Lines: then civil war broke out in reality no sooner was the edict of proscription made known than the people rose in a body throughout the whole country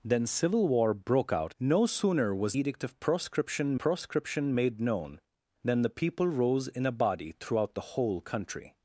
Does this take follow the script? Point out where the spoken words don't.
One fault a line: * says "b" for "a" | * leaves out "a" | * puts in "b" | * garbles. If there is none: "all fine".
* leaves out "in reality"
* leaves out "the"
* puts in "proscription"